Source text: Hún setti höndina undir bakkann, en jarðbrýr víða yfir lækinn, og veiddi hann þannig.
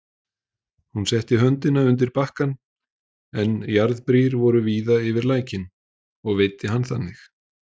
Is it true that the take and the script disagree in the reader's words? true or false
true